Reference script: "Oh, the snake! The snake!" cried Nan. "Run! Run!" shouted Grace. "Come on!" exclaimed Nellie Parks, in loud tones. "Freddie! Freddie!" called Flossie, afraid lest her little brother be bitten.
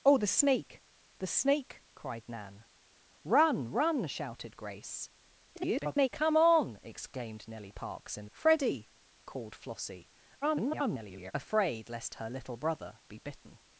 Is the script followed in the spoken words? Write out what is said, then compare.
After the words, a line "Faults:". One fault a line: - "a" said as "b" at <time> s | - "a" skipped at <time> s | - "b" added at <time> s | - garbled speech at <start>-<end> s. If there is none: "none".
"Oh, the snake! The snake!" cried Nan. "Run! Run!" shouted Grace. [garbled] "Come on!" exclaimed Nellie Parks, in! Freddie!" called Flossie, [garbled] afraid lest her little brother be bitten.
Faults:
- garbled speech at 5.6-6.1 s
- "loud tones Freddie" skipped at 8.3 s
- garbled speech at 10.4-11.3 s